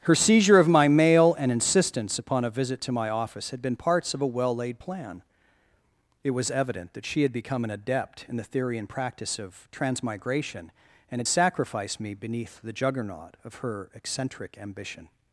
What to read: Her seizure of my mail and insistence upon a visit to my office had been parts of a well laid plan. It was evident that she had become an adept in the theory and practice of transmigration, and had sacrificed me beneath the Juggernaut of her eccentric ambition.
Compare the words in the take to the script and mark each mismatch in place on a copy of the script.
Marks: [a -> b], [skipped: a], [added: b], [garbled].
Her seizure of my mail and insistence upon a visit to my office had been parts of a well laid plan. It was evident that she had become an adept in the theory and practice of transmigration, and had sacrificed me beneath the Juggernaut of her eccentric ambition.